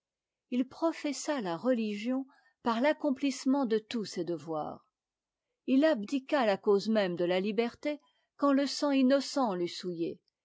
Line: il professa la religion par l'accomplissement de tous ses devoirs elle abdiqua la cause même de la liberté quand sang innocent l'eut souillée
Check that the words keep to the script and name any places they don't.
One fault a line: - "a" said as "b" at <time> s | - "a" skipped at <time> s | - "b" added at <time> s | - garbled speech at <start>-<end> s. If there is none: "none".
- "elle" said as "il" at 5.7 s
- "le" added at 8.5 s